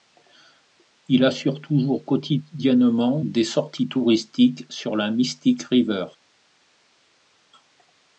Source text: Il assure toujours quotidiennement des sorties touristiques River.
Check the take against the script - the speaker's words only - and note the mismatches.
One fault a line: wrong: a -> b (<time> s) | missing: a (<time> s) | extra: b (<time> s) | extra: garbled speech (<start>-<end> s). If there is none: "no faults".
extra: sur la Mystic (4.7 s)